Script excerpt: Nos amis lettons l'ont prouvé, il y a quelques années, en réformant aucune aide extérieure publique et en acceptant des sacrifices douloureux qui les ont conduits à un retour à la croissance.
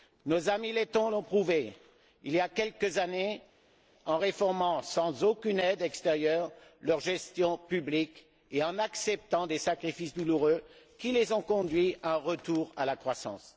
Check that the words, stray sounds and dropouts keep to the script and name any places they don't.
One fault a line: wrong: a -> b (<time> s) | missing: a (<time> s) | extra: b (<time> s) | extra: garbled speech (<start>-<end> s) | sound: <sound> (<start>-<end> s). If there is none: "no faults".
extra: sans (4.8 s)
extra: leur gestion (6.8 s)